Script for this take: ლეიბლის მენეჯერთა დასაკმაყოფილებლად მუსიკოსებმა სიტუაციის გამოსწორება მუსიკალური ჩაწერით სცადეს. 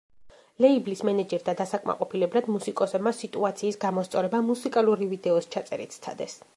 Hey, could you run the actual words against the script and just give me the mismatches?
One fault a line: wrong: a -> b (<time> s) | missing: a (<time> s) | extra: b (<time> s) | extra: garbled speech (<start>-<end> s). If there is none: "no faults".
extra: ვიდეოს (5.2 s)